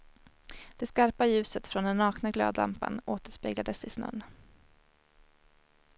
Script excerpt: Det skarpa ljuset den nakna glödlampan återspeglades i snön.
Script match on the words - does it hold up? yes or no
no